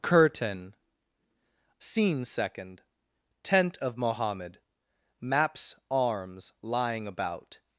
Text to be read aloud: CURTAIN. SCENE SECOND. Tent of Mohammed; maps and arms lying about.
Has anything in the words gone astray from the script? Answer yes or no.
yes